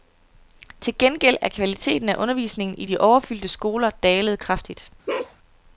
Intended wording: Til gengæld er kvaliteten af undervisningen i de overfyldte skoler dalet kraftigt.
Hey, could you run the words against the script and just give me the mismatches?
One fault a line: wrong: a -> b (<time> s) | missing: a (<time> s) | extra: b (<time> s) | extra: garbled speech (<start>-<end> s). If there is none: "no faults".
no faults